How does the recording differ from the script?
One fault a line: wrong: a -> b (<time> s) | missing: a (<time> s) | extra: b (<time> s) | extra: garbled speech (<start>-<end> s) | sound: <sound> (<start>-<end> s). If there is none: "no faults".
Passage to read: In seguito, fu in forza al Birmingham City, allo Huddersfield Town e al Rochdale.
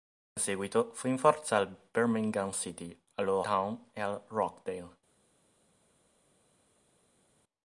missing: Huddersfield (3.4 s)